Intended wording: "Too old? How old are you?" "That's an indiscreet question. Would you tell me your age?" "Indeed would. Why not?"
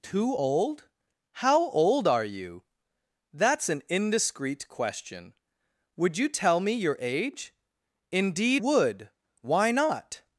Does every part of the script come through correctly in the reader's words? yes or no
yes